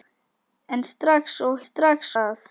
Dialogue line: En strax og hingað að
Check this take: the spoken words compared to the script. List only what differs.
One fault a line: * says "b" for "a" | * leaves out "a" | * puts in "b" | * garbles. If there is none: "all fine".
* says "strax" for "hingað"